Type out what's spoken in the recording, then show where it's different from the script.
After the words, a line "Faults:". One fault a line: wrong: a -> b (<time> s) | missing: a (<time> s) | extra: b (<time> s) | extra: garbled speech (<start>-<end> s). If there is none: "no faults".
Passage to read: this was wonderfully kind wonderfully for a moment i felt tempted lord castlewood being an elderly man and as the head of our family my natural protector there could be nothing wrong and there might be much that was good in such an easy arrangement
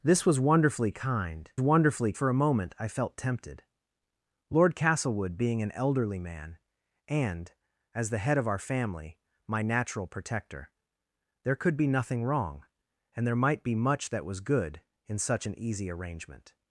this was wonderfully kind wonderfully for a moment i felt tempted lord castlewood being an elderly man and as the head of our family my natural protector there could be nothing wrong and there might be much that was good in such an easy arrangement
Faults:
no faults